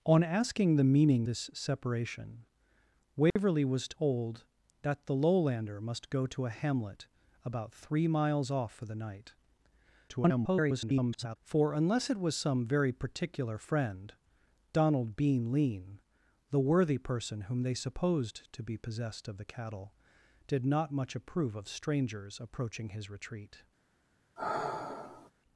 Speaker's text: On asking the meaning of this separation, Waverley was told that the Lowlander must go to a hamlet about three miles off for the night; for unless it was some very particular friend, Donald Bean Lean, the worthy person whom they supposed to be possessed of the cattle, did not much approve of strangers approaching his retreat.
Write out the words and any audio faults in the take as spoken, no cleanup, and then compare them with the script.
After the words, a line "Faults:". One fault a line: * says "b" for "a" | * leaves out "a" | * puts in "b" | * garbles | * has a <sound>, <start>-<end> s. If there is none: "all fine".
On asking the meaning this separation, Waverley was told that the Lowlander must go to a hamlet about three miles off for the night; [garbled] for unless it was some very particular friend, Donald Bean Lean, the worthy person whom they supposed to be possessed of the cattle, did not much approve of strangers approaching his retreat.
Faults:
* leaves out "of"
* has a dropout, 3.3-3.4 s
* garbles
* has a sigh, 24.4-25.3 s